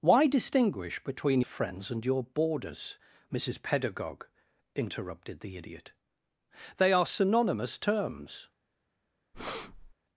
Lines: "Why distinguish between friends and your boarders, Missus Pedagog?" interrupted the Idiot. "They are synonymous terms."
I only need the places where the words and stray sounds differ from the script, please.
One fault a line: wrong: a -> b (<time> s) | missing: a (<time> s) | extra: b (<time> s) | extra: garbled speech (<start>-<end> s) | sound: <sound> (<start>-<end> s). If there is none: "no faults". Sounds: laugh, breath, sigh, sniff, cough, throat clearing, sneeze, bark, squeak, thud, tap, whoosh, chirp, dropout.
sound: breath (9.3-9.9 s)